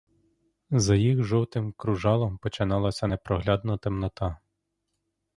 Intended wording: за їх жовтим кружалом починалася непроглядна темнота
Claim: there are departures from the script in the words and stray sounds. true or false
false